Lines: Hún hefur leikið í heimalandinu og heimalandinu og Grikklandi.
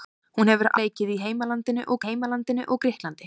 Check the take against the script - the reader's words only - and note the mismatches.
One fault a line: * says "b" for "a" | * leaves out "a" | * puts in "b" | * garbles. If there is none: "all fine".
all fine